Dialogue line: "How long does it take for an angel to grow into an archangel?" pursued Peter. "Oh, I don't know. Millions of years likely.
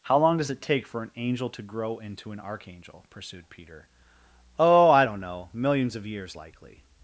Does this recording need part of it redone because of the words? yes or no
no